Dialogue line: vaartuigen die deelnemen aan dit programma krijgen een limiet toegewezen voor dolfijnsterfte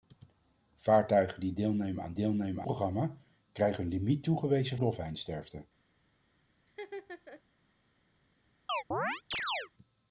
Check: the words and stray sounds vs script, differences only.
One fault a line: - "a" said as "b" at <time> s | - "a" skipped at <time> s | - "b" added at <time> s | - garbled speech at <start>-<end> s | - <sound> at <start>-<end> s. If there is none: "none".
- "dit" said as "deelnemen" at 2.1 s
- "voor" skipped at 4.8 s
- laugh at 6.7-7.4 s
- chirp at 8.7-9.7 s